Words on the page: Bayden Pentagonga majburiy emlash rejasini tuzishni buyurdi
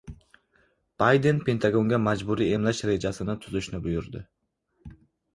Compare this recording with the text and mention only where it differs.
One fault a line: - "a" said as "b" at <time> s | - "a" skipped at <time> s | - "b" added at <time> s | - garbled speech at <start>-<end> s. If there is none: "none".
none